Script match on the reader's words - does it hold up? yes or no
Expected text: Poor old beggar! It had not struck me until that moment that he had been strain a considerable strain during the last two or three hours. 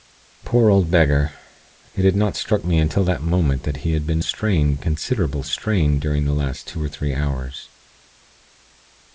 yes